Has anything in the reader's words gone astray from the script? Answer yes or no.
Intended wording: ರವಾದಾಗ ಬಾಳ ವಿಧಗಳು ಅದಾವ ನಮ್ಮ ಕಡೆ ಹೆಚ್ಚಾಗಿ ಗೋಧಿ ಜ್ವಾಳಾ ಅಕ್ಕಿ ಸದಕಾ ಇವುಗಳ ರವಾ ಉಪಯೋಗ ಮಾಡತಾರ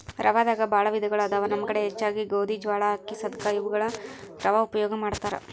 no